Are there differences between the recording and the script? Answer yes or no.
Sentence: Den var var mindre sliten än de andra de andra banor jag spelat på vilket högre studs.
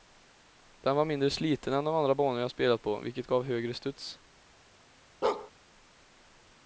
yes